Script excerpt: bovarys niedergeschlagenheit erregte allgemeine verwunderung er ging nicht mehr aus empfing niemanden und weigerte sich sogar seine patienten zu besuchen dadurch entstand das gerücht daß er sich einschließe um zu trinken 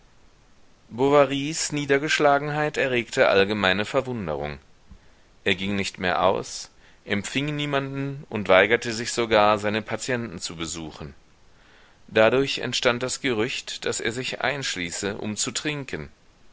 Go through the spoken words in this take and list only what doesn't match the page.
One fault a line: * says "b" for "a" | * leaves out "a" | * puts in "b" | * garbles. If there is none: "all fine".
all fine